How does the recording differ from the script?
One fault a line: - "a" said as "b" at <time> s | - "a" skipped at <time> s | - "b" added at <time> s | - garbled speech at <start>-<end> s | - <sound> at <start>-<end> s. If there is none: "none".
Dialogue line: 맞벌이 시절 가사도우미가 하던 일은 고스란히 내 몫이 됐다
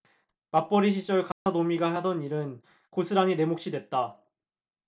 - dropout at 1.3-1.5 s